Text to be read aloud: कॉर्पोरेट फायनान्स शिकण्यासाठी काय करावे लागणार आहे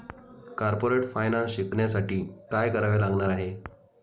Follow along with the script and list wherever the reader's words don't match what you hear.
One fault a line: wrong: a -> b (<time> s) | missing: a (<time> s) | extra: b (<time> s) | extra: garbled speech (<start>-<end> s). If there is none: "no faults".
no faults